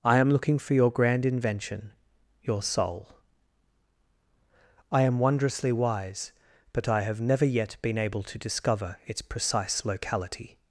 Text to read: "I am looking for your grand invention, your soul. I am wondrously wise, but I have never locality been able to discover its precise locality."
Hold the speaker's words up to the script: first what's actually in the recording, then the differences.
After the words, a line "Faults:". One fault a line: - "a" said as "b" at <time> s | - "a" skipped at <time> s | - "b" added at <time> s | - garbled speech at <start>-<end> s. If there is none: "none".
"I am looking for your grand invention, your soul. I am wondrously wise, but I have never yet been able to discover its precise locality."
Faults:
- "locality" said as "yet" at 7.5 s